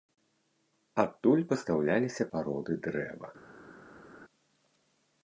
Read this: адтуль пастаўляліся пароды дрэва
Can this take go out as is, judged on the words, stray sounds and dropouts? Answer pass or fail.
pass